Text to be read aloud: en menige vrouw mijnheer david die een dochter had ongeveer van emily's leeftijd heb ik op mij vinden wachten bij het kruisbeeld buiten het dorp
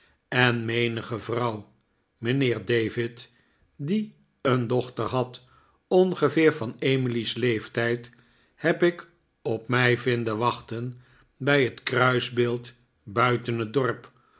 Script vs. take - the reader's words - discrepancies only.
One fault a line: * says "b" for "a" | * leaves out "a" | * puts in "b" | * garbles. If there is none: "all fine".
all fine